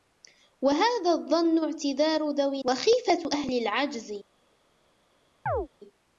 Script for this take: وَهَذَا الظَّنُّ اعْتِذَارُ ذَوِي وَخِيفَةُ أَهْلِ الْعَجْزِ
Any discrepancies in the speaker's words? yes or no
no